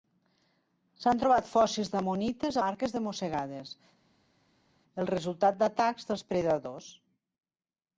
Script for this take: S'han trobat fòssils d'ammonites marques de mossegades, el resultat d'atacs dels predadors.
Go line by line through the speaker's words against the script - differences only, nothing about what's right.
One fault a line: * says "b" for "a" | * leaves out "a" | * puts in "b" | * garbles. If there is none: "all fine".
all fine